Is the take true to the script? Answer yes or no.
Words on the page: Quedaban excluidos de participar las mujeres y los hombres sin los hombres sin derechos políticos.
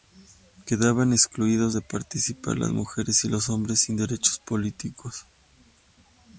no